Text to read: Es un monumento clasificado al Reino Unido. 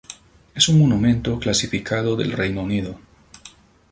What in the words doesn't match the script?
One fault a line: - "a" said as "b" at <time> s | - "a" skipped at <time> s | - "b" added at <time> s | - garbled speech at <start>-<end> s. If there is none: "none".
- "al" said as "del" at 2.1 s